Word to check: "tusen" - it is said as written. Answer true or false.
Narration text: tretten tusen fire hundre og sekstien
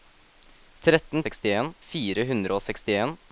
false